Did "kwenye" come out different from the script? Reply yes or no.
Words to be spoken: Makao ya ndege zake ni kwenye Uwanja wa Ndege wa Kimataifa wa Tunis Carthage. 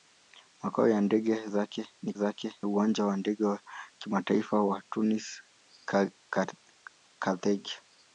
yes